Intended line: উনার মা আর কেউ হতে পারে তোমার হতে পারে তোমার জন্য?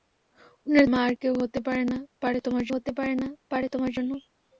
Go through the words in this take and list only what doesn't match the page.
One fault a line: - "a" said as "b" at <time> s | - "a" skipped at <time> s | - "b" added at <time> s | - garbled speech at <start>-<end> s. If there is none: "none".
none